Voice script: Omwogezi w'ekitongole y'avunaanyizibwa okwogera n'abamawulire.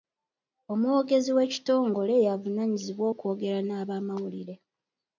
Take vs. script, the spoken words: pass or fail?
pass